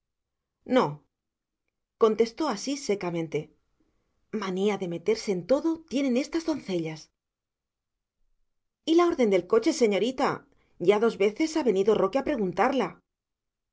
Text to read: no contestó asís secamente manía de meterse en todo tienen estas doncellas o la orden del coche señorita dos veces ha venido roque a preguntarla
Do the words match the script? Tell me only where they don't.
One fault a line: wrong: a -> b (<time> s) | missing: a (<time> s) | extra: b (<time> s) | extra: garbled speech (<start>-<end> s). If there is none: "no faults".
wrong: o -> y (8.8 s)
extra: ya (10.8 s)